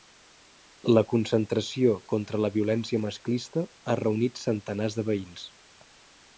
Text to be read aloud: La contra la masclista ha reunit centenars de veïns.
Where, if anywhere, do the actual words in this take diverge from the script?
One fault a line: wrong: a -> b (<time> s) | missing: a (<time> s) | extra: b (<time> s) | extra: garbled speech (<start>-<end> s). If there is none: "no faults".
extra: concentració (1.1 s)
extra: violència (2.6 s)